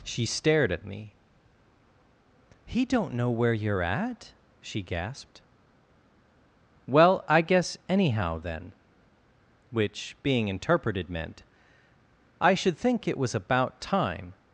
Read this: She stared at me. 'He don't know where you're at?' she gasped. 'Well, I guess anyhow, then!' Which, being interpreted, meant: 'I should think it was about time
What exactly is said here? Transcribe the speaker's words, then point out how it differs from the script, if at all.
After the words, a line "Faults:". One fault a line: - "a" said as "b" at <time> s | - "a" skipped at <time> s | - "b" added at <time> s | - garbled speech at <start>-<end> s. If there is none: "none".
She stared at me. 'He don't know where you're at?' she gasped. 'Well, I guess anyhow, then!' Which, being interpreted, meant: 'I should think it was about time
Faults:
none